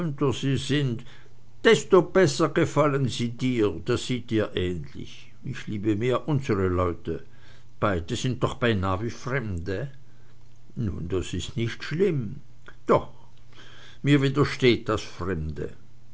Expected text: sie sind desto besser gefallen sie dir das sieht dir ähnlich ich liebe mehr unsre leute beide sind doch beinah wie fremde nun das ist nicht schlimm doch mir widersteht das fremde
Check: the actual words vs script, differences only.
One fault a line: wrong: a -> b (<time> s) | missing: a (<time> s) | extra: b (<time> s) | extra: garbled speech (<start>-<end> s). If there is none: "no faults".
no faults